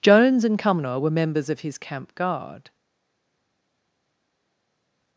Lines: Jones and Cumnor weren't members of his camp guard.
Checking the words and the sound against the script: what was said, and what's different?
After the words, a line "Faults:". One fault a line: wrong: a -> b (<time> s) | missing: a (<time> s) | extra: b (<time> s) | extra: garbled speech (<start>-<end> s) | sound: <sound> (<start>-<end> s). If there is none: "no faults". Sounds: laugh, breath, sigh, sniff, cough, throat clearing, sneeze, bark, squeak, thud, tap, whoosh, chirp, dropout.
Jones and Cumnor were members of his camp guard.
Faults:
wrong: weren't -> were (1.0 s)